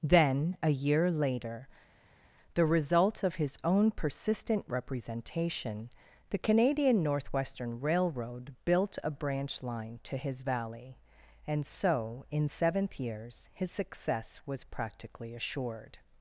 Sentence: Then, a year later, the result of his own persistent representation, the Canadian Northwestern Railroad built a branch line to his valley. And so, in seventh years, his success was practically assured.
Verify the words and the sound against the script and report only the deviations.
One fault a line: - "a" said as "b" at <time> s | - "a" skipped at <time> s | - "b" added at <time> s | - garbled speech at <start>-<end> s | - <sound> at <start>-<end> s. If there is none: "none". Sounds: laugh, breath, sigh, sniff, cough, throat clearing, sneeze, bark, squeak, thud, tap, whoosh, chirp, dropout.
none